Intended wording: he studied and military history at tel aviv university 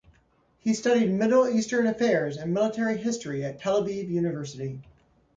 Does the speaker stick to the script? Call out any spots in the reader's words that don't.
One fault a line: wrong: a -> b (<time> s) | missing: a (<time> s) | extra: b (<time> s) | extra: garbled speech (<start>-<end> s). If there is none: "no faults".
extra: middle eastern affairs (1.1 s)